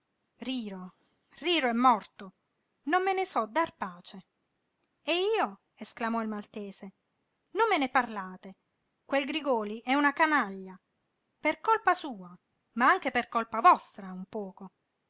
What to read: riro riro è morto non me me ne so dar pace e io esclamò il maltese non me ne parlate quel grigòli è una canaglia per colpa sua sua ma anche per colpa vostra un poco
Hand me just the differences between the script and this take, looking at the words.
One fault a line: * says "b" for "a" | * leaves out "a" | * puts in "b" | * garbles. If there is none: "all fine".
* leaves out "me"
* leaves out "sua"